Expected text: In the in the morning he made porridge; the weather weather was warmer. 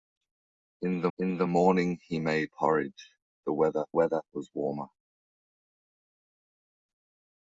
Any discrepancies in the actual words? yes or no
no